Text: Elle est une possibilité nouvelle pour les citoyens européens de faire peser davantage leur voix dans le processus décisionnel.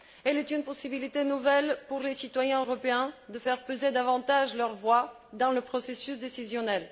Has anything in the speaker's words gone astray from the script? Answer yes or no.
no